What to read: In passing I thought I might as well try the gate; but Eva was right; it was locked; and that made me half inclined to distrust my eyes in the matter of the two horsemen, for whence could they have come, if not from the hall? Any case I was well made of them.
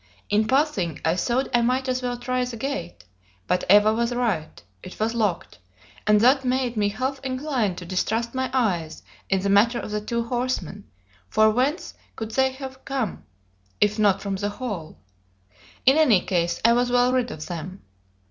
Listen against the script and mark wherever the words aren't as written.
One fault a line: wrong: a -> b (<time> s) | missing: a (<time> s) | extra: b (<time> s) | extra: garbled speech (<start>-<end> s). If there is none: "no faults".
extra: In (15.8 s)
wrong: made -> rid (17.1 s)